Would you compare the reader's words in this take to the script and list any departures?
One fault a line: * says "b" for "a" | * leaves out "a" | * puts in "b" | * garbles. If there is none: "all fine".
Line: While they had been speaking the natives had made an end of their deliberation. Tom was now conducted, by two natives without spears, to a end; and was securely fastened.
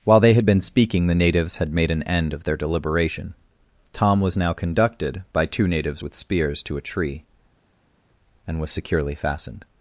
* says "with" for "without"
* says "tree" for "end"